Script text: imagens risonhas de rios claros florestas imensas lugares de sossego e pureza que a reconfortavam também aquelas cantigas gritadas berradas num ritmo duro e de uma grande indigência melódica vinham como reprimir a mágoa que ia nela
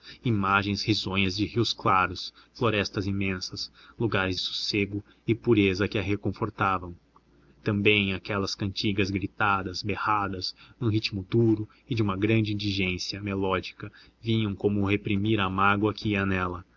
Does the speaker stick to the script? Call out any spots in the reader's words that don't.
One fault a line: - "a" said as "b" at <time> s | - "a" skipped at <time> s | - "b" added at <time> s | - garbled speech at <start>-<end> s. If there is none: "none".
- "de" skipped at 4.4 s